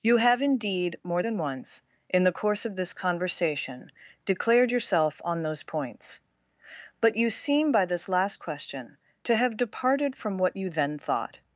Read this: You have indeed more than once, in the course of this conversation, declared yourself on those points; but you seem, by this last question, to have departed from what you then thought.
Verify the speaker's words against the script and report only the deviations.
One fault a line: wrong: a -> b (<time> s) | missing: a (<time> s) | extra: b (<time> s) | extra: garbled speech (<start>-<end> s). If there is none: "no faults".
no faults